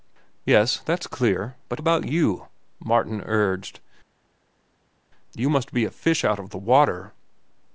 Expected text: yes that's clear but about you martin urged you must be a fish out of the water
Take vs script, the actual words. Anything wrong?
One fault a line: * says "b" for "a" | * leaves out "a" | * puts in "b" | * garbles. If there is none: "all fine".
all fine